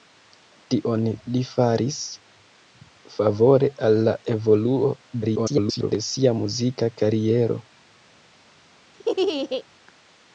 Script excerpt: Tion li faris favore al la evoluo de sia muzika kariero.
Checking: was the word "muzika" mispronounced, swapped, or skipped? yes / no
no